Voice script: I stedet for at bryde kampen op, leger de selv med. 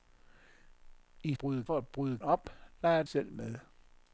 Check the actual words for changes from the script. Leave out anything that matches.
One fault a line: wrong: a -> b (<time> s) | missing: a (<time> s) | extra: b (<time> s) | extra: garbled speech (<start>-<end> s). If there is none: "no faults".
wrong: stedet -> bryde (1.3 s)
missing: kampen (2.2 s)
missing: de (3.0 s)